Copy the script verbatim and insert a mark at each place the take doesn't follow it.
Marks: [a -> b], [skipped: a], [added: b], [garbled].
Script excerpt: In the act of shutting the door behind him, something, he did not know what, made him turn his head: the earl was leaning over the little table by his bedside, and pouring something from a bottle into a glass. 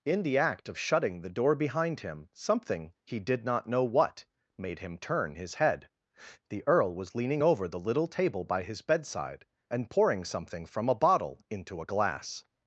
In the act of shutting the door behind him, something, he did not know what, made him turn his head: the earl was leaning over the little table by his bedside, and pouring something from a bottle into a glass.